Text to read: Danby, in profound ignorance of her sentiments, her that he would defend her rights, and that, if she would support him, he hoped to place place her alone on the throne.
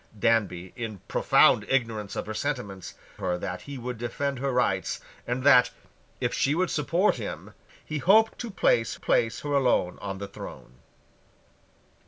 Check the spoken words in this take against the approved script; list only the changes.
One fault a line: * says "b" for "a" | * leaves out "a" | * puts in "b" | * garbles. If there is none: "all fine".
all fine